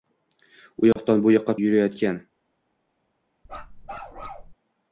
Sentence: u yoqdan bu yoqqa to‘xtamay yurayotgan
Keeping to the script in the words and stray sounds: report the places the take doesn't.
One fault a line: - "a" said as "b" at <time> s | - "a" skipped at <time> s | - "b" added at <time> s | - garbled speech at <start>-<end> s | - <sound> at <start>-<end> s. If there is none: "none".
- dropout at 0.9-1.0 s
- "to‘xtamay" skipped at 1.6 s
- bark at 3.5-4.5 s